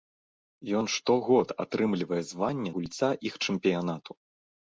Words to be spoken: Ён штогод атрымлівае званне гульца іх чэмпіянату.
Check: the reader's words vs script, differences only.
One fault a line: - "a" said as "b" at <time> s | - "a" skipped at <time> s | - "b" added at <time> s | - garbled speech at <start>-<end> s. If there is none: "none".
none